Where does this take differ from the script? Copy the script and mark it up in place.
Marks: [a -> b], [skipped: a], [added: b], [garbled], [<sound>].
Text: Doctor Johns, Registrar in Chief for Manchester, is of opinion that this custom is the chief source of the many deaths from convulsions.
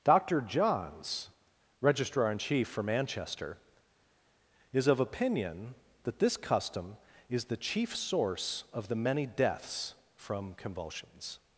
Doctor Johns, Registrar in Chief for Manchester, is of opinion that this custom is the chief source of the many deaths from convulsions.